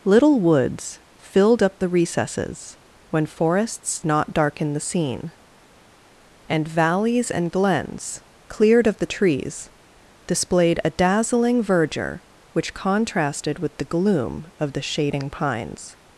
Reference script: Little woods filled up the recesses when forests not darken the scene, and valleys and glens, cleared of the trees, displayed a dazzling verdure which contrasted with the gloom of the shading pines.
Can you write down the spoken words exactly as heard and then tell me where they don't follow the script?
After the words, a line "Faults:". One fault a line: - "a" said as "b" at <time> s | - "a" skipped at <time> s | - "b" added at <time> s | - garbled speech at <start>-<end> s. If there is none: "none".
Little woods filled up the recesses when forests not darken the scene, and valleys and glens, cleared of the trees, displayed a dazzling verdure which contrasted with the gloom of the shading pines.
Faults:
none